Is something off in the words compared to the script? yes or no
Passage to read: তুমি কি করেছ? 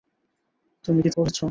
no